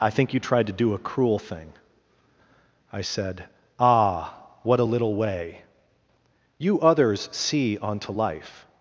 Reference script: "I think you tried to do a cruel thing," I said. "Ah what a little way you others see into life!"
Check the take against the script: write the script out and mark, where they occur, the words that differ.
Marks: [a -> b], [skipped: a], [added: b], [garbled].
"I think you tried to do a cruel thing," I said. "Ah what a little way you others see [into -> onto] life!"